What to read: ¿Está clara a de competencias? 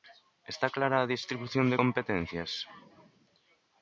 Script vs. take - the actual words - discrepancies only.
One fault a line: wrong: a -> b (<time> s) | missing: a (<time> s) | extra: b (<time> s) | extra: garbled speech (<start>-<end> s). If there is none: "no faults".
extra: distribución (1.1 s)